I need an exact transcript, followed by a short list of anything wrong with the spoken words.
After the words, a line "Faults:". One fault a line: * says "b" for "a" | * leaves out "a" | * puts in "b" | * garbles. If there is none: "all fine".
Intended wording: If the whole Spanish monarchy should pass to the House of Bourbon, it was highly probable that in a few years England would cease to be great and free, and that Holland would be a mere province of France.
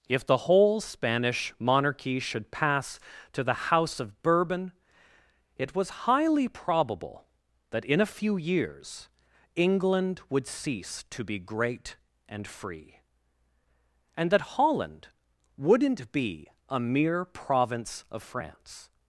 If the whole Spanish monarchy should pass to the House of Bourbon, it was highly probable that in a few years England would cease to be great and free, and that Holland wouldn't be a mere province of France.
Faults:
* says "wouldn't" for "would"